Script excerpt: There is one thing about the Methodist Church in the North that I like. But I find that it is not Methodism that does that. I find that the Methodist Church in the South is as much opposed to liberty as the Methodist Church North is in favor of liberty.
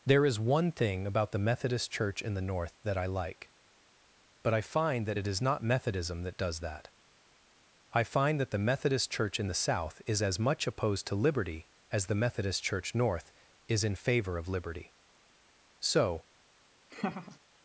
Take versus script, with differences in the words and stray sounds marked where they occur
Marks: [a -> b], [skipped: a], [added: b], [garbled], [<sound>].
There is one thing about the Methodist Church in the North that I like. But I find that it is not Methodism that does that. I find that the Methodist Church in the South is as much opposed to liberty as the Methodist Church North is in favor of liberty. [added: So] [laugh]